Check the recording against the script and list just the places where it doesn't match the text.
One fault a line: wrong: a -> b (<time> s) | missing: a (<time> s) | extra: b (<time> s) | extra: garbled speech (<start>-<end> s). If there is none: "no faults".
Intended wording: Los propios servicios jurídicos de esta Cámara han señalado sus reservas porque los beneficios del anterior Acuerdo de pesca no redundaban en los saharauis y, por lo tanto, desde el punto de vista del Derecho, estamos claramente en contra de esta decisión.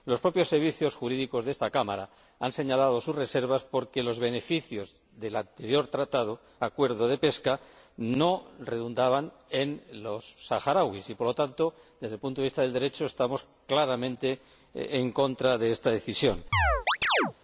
no faults